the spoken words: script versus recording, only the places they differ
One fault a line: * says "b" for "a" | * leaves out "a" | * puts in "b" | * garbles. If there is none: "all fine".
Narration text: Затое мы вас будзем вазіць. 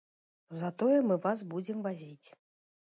all fine